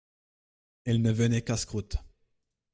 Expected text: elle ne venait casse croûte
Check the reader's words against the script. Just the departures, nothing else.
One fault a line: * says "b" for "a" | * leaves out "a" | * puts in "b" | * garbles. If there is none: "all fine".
all fine